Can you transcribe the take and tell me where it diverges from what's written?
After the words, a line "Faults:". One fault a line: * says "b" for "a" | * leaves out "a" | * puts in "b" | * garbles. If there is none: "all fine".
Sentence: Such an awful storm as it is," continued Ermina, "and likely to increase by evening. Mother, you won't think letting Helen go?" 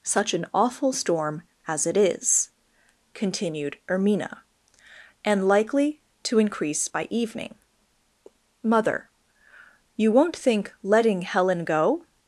Such an awful storm as it is," continued Ermina, "and likely to increase by evening. Mother, you won't think letting Helen go?"
Faults:
all fine